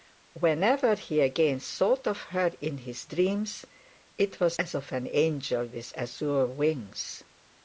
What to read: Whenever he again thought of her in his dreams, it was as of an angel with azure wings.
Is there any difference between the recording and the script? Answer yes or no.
no